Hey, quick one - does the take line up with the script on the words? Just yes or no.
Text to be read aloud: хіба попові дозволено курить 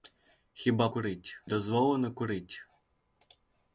no